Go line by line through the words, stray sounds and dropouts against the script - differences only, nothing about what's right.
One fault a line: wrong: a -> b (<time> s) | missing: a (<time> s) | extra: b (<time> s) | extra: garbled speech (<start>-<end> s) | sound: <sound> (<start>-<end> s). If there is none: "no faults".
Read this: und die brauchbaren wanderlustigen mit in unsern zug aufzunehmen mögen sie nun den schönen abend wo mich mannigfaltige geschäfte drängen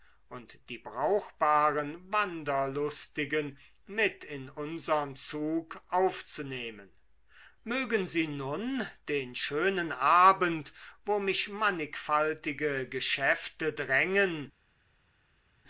no faults